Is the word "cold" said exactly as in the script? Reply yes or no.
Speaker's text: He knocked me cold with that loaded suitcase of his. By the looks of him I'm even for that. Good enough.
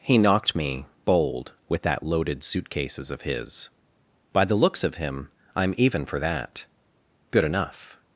no